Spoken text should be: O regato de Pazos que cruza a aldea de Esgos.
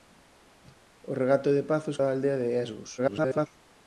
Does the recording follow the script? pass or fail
fail